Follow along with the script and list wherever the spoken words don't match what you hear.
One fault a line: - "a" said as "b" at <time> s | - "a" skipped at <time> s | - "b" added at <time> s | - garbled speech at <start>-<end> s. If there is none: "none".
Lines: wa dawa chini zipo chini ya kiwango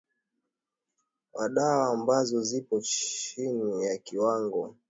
- "chini" said as "ambazo" at 1.9 s